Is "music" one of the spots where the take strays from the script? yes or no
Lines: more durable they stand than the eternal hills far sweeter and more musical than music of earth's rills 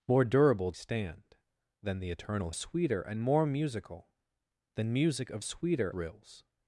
no